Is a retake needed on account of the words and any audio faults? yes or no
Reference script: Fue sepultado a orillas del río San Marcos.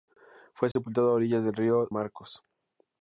yes